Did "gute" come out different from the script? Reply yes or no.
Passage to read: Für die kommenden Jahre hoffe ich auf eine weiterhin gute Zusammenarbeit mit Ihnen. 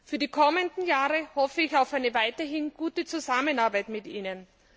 no